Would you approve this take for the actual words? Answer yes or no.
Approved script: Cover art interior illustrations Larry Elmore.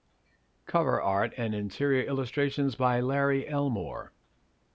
no